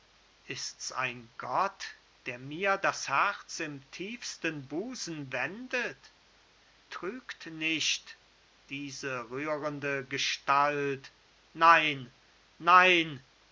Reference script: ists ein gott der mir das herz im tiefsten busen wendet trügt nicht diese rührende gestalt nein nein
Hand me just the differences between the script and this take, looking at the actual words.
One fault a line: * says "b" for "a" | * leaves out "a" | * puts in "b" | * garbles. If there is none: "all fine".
all fine